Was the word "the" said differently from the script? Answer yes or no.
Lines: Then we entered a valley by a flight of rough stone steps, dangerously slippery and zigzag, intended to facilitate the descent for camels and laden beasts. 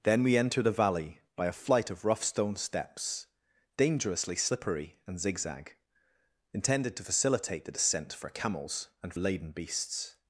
no